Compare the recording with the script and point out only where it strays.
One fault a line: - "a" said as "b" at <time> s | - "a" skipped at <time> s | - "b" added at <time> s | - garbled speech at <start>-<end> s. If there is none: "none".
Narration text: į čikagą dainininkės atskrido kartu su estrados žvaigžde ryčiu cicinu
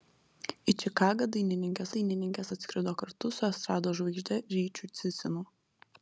- "dainininkės" added at 2.0 s